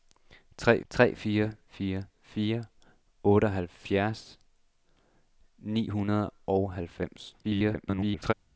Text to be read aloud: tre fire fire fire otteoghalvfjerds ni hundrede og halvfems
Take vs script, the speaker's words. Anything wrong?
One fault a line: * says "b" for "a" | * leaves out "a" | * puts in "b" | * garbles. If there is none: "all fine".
* puts in "tre"
* garbles